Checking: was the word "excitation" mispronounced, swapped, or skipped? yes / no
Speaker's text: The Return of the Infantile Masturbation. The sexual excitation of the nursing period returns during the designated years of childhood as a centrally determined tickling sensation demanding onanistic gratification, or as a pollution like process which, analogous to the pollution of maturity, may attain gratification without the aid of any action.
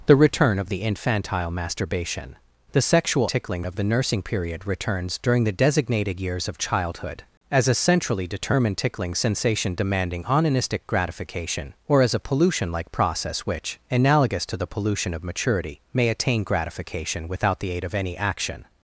yes